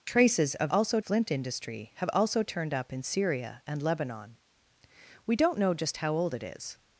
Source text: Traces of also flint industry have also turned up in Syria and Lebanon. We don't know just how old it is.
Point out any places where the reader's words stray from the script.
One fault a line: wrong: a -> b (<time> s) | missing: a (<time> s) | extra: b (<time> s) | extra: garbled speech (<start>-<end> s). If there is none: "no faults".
no faults